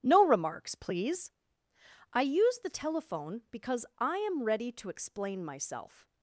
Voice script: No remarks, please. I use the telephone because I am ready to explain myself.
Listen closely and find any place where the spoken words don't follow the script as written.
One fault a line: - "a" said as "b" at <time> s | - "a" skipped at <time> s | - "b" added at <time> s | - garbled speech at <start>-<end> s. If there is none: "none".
none